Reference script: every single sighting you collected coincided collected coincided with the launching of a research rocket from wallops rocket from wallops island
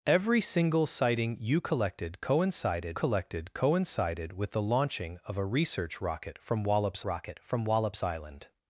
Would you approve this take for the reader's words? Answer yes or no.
yes